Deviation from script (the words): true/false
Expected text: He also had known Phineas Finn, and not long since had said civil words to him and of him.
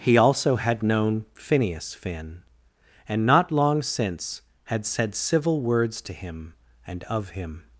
false